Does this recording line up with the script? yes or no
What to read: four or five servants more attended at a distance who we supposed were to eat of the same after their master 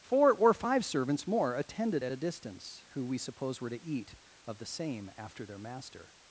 no